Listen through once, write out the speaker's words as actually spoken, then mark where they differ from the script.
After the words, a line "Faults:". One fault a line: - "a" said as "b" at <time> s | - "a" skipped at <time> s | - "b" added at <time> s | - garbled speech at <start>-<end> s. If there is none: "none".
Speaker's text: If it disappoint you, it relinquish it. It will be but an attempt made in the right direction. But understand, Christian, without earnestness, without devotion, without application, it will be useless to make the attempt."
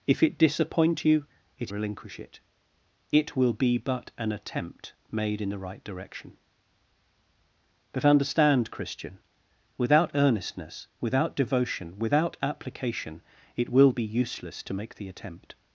If it disappoint you, it relinquish it. It will be but an attempt made in the right direction. But understand, Christian, without earnestness, without devotion, without application, it will be useless to make the attempt."
Faults:
none